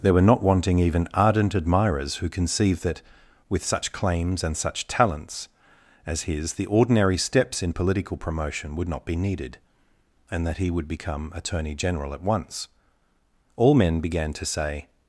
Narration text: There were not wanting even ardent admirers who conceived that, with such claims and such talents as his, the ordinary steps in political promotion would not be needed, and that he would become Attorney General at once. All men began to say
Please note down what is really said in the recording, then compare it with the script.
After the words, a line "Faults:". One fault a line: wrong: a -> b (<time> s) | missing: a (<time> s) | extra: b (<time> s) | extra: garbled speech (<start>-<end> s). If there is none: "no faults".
There were not wanting even ardent admirers who conceived that, with such claims and such talents as his, the ordinary steps in political promotion would not be needed, and that he would become Attorney General at once. All men began to say
Faults:
no faults